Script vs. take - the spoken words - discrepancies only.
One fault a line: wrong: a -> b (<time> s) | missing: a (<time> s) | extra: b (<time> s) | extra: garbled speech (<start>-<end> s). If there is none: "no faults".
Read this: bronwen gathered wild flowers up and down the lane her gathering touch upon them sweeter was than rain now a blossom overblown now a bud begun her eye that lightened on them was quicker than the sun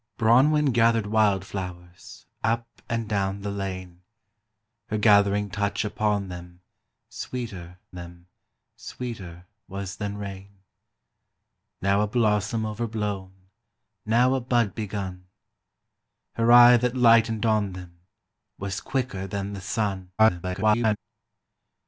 extra: them sweeter (7.9 s)
extra: garbled speech (20.2-21.0 s)